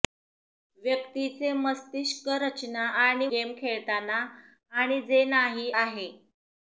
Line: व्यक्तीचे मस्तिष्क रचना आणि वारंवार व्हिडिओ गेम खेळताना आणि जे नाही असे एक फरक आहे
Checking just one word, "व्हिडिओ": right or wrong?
wrong